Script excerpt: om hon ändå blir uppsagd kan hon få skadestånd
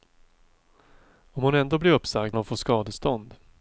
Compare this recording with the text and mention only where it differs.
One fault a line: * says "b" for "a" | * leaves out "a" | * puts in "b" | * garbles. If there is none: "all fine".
* leaves out "kan"